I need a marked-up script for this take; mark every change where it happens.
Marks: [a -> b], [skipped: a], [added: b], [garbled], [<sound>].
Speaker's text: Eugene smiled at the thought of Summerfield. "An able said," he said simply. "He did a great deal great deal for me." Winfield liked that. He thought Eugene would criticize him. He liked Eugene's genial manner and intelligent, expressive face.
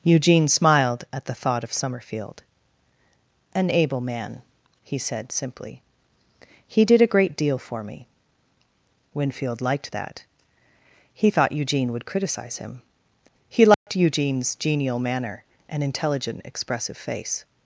Eugene smiled at the thought of Summerfield. "An able [said," -> man] he said simply. "He did a great deal [skipped: great deal] for me." Winfield liked that. He thought Eugene would criticize him. He liked [dropout] Eugene's genial manner and intelligent, expressive face.